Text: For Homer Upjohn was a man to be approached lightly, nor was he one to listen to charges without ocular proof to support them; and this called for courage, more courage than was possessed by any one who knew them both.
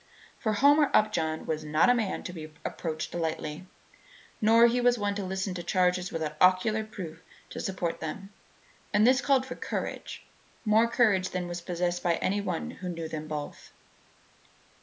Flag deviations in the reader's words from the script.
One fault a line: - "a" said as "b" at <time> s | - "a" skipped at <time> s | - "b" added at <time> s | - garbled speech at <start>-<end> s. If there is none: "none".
- "not" added at 1.6 s